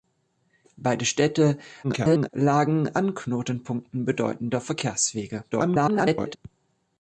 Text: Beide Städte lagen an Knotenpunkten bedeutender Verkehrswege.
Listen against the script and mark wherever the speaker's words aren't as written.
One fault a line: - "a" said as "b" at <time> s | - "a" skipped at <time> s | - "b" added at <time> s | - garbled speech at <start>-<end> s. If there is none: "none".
- garbled speech at 1.8-2.3 s
- garbled speech at 5.5-6.4 s